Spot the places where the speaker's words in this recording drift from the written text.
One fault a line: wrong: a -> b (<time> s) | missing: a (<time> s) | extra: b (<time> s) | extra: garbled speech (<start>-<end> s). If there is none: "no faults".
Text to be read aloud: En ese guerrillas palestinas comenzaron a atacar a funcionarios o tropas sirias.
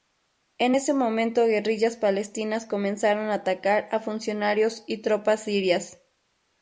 extra: momento (0.9 s)
wrong: o -> y (4.9 s)